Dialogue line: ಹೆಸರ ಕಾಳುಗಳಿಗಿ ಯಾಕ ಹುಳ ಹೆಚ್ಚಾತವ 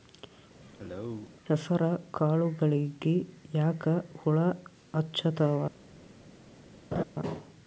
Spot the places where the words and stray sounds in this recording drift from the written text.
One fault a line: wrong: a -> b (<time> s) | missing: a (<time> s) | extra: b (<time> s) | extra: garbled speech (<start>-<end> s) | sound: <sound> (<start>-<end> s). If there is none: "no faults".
sound: cough (0.6-1.3 s)
sound: laugh (6.9-7.0 s)